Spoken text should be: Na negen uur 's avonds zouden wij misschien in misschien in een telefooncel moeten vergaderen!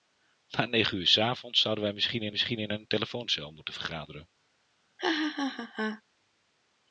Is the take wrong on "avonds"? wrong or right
right